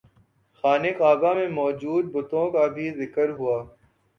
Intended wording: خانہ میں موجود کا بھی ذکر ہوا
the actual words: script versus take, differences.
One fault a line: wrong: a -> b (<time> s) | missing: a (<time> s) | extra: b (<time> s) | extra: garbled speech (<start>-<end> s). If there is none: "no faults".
extra: کعبہ (1.0 s)
extra: بتوں (2.1 s)